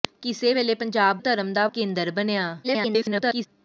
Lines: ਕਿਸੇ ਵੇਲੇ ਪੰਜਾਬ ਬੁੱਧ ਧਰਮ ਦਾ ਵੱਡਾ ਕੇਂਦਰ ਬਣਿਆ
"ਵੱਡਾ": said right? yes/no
no